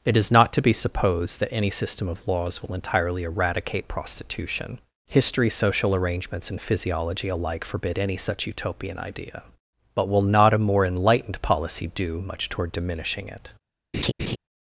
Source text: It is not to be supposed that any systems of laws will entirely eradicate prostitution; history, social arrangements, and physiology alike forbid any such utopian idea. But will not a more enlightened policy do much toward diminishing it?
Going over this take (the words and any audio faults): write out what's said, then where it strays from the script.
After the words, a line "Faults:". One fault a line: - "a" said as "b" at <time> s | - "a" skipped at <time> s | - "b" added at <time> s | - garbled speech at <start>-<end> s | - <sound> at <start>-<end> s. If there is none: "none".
It is not to be supposed that any system of laws will entirely eradicate prostitution; history, social arrangements, and physiology alike forbid any such utopian idea. But will not a more enlightened policy do much toward diminishing it?
Faults:
- "systems" said as "system" at 1.7 s
- laugh at 13.9-14.4 s